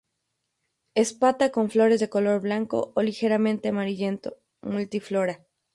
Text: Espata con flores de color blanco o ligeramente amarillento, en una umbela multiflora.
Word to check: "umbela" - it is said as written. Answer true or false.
false